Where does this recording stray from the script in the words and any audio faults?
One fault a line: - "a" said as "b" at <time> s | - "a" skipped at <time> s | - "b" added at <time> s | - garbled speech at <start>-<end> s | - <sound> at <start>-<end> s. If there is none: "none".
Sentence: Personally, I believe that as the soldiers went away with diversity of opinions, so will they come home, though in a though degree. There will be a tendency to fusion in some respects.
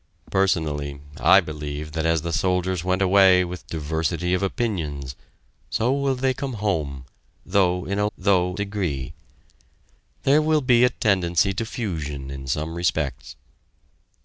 none